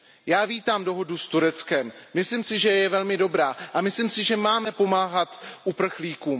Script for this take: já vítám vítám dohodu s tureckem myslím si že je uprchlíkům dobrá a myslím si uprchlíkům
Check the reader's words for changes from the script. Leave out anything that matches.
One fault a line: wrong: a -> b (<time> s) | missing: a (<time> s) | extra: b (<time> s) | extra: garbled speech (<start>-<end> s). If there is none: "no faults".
missing: vítám (0.8 s)
wrong: uprchlíkům -> velmi (2.9 s)
extra: že máme pomáhat (4.2 s)